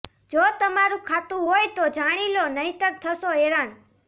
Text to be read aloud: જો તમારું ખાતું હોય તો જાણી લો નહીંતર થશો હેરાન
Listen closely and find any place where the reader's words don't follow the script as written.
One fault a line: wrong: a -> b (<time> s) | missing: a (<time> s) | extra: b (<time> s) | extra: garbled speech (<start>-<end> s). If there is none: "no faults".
no faults